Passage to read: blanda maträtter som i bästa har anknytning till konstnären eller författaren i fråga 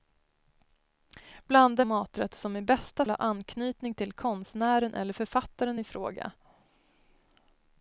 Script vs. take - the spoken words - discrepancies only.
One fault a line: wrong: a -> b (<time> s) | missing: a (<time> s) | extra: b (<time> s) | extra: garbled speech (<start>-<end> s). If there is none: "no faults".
no faults